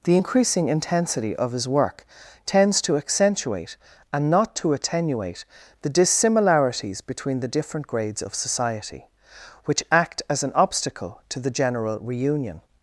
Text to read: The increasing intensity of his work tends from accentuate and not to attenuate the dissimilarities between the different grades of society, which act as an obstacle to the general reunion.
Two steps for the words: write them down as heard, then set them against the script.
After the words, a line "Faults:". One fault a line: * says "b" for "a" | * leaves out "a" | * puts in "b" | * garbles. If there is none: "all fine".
The increasing intensity of his work tends to accentuate and not to attenuate the dissimilarities between the different grades of society, which act as an obstacle to the general reunion.
Faults:
* says "to" for "from"